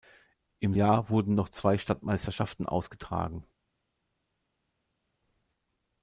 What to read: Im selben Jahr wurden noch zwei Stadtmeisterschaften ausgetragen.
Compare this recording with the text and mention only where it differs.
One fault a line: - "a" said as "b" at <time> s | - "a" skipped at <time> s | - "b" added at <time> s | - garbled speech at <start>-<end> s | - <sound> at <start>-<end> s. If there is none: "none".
- "selben" skipped at 0.7 s